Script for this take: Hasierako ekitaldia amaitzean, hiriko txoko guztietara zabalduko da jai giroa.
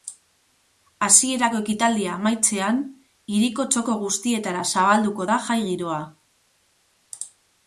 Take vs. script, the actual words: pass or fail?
pass